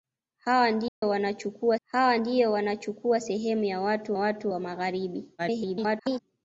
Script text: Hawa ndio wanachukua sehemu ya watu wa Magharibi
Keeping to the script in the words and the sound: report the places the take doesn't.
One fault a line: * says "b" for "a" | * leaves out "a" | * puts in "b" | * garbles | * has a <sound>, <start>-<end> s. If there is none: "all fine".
* has a dropout, 0.9-1.0 s
* puts in "hawa ndio wanachukua"
* puts in "watu"
* garbles